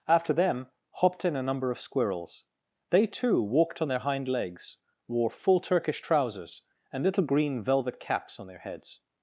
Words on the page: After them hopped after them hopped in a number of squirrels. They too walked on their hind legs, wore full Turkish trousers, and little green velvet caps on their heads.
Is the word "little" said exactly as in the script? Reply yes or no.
yes